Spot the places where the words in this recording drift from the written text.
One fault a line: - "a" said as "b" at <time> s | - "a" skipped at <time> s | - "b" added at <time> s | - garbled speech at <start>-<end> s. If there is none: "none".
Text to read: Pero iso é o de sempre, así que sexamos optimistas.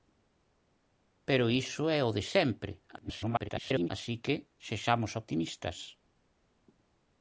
- garbled speech at 3.0-3.9 s